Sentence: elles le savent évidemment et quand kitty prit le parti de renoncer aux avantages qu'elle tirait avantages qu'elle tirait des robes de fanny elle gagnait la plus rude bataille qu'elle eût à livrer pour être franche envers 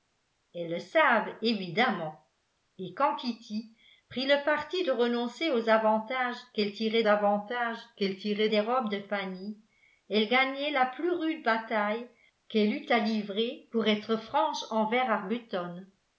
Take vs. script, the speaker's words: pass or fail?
pass